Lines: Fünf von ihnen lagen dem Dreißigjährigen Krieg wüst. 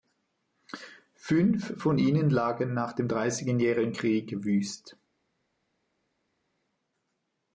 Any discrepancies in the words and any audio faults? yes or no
yes